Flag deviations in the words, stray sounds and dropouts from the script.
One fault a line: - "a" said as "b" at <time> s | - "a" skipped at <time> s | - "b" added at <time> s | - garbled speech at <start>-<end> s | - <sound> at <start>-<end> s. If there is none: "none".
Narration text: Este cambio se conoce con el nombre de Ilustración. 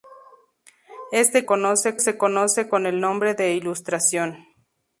- "cambio" said as "conoce" at 1.4 s